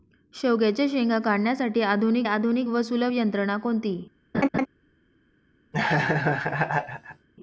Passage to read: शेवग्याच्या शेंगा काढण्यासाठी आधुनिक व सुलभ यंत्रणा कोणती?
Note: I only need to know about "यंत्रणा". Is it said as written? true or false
true